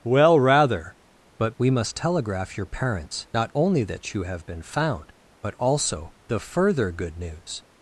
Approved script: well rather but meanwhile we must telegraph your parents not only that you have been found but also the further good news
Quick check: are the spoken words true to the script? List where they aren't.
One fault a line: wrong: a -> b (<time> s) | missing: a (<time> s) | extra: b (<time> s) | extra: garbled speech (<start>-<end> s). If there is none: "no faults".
missing: meanwhile (1.6 s)